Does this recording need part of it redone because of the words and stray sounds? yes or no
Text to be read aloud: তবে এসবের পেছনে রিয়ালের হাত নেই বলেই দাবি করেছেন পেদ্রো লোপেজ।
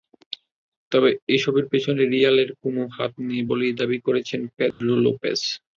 yes